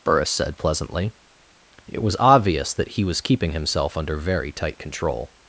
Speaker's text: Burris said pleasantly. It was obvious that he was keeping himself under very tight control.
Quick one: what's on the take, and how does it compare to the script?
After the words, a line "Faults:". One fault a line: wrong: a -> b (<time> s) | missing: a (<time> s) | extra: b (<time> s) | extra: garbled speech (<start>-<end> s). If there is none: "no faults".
Burris said pleasantly. It was obvious that he was keeping himself under very tight control.
Faults:
no faults